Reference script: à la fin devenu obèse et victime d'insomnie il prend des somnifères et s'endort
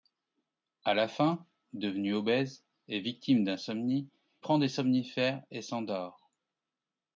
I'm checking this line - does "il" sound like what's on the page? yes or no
no